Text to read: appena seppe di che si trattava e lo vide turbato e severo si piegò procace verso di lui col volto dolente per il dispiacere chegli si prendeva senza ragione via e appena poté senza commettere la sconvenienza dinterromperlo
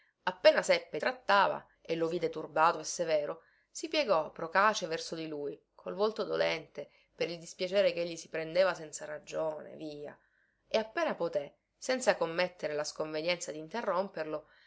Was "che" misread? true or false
true